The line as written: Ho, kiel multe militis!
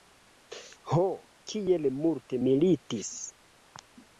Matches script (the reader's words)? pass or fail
pass